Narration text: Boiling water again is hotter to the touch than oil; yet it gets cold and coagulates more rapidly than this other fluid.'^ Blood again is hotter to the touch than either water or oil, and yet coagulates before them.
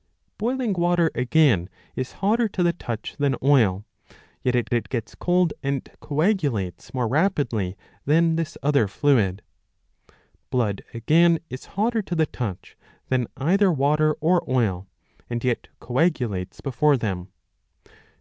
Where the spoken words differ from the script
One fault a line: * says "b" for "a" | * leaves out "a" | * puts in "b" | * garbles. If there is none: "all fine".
* puts in "it"